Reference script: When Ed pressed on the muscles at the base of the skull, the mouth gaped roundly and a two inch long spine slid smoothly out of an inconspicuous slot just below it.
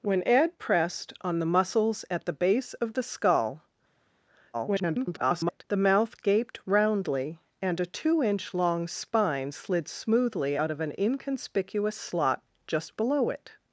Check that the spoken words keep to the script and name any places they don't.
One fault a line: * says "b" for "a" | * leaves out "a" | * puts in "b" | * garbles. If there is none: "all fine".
* garbles